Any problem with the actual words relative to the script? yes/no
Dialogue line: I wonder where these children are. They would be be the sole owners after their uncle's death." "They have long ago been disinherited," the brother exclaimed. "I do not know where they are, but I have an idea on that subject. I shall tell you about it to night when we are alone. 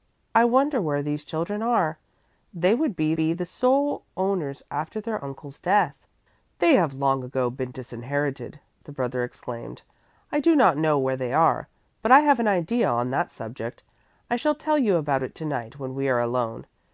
no